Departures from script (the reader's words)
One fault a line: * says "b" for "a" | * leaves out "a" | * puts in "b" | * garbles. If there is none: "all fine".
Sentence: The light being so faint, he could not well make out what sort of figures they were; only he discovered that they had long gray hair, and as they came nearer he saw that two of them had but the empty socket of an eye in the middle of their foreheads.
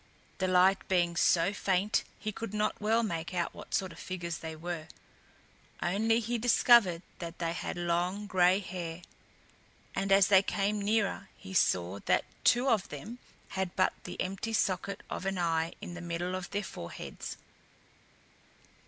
all fine